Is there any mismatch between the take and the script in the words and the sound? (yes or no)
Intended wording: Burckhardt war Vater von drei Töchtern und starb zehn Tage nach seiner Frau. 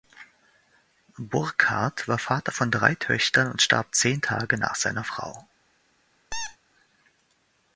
yes